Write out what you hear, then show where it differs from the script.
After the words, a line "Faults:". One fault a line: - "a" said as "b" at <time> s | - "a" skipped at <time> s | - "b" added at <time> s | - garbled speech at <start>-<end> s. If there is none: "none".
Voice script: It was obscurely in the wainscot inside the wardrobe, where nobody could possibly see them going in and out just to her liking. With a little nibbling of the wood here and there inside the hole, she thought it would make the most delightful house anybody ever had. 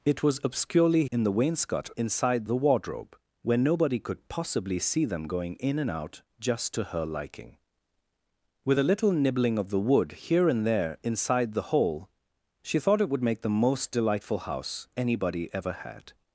It was obscurely in the wainscot inside the wardrobe, where nobody could possibly see them going in and out just to her liking. With a little nibbling of the wood here and there inside the hole, she thought it would make the most delightful house anybody ever had.
Faults:
none